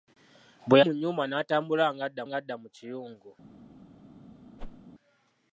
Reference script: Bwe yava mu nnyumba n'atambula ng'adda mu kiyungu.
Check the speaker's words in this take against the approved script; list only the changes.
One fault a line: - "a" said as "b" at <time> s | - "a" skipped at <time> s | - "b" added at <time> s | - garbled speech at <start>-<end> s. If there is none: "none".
- "yava" skipped at 0.8 s
- "ng'adda" added at 2.3 s